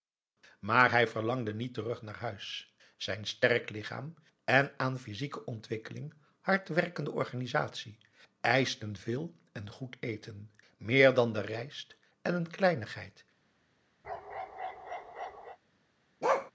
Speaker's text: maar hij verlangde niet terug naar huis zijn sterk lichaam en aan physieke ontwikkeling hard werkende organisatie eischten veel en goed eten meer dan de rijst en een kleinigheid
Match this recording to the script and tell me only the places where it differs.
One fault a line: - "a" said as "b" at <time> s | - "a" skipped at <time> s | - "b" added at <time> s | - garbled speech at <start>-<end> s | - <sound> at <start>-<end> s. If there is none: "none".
- bark at 14.0-15.6 s
- bark at 16.2-16.5 s